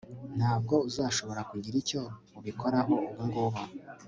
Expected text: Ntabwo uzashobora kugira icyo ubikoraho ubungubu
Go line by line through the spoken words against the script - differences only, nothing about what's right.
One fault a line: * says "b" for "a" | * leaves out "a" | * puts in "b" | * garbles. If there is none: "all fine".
all fine